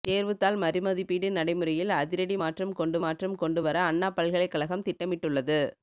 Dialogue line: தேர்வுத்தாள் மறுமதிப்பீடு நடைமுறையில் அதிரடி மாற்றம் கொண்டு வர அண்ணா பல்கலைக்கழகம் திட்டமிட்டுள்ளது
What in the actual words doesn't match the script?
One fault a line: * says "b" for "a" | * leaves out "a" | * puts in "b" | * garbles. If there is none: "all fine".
* puts in "மாற்றம் கொண்டு"